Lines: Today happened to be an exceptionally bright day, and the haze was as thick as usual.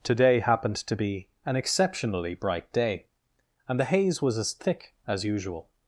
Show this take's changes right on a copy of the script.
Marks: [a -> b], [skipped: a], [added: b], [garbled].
Today happened to be an exceptionally bright day, and the haze was as thick as usual.